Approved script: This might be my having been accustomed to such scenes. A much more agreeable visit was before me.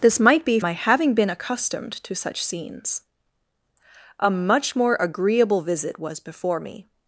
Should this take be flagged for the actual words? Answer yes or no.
no